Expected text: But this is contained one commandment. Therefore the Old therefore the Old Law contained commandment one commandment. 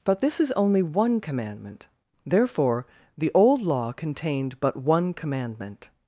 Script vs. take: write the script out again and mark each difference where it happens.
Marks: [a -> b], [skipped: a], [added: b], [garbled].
But this is [contained -> only] one commandment. Therefore the Old [skipped: therefore the Old] Law contained [commandment -> but] one commandment.